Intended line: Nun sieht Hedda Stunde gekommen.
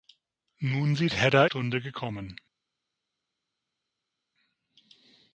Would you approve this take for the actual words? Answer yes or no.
yes